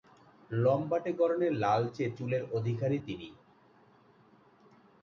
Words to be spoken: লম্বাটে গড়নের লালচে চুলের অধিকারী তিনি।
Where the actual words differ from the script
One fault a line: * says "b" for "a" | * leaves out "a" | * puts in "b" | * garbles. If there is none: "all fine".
all fine